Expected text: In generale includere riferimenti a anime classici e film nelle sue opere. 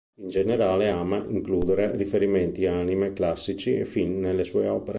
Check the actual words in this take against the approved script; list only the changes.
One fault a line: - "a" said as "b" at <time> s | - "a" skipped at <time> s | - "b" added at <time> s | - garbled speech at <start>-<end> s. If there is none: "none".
- "ama" added at 0.9 s